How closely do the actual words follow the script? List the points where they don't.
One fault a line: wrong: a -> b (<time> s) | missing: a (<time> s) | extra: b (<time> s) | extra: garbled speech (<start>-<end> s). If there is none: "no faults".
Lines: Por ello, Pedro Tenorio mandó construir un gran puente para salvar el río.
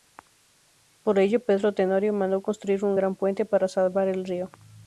no faults